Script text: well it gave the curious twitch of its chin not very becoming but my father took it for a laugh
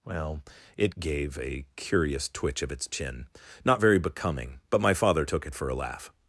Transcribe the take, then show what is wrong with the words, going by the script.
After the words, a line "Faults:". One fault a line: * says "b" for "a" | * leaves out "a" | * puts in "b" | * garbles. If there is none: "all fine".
well it gave a curious twitch of its chin not very becoming but my father took it for a laugh
Faults:
* says "a" for "the"